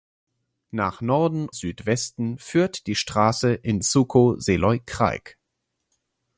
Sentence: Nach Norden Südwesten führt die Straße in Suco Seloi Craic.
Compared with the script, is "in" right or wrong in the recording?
right